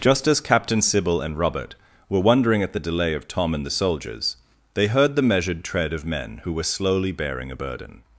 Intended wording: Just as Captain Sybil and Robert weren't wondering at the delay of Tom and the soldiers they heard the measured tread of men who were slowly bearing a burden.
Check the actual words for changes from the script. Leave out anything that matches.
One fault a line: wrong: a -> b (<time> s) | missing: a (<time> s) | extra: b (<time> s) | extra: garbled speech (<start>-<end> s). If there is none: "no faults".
wrong: weren't -> were (2.1 s)